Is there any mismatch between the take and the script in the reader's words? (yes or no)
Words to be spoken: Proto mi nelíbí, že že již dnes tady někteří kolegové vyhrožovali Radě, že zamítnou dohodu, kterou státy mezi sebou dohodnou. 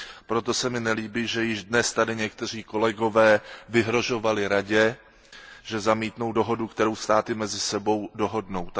yes